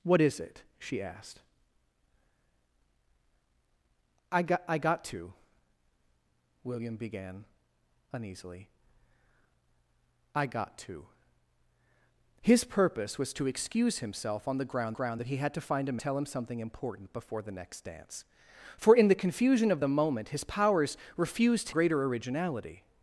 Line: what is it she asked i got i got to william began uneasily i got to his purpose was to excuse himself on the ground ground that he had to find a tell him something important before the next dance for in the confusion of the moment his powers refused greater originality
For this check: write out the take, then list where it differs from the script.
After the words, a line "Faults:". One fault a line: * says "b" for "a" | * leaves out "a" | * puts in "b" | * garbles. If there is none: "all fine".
what is it she asked i got i got to william began uneasily i got to his purpose was to excuse himself on the ground ground that he had to find a tell him something important before the next dance for in the confusion of the moment his powers refused greater originality
Faults:
all fine